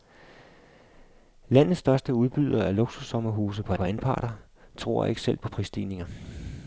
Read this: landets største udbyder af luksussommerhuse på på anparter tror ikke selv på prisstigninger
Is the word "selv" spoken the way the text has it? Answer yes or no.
yes